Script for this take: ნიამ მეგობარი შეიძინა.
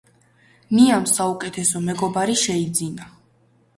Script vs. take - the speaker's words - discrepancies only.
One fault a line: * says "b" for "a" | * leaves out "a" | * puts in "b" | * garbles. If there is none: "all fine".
* puts in "საუკეთესო"